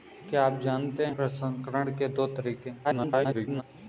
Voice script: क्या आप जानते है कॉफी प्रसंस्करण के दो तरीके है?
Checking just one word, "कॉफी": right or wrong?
wrong